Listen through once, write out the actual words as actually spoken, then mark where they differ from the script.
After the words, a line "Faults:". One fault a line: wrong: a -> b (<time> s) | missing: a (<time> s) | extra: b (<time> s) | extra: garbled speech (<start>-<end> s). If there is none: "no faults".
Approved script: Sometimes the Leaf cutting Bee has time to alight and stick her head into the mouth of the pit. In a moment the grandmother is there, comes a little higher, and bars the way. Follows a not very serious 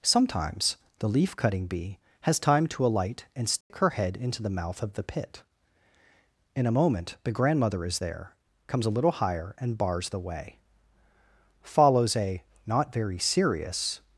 Sometimes the Leaf cutting Bee has time to alight and stick her head into the mouth of the pit. In a moment the grandmother is there, comes a little higher, and bars the way. Follows a not very serious
Faults:
no faults